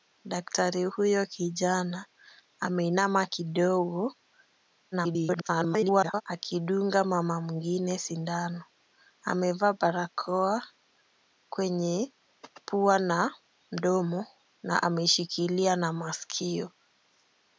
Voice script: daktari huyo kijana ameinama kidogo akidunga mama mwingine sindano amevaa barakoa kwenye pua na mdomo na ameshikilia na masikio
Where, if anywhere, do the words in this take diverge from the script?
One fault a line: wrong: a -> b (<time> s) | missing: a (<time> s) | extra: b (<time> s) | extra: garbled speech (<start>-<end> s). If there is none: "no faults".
extra: garbled speech (4.9-6.2 s)